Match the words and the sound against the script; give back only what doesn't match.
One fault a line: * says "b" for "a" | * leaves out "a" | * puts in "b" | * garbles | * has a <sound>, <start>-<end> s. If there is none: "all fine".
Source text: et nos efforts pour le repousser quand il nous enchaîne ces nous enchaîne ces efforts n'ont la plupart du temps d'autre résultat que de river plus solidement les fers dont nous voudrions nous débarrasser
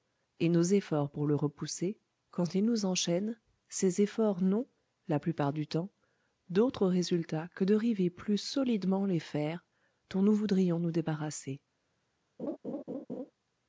* leaves out "nous enchaîne ces"
* has a laugh, 12.4-13.3 s